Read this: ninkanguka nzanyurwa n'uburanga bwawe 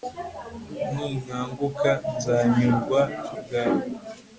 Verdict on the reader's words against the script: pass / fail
fail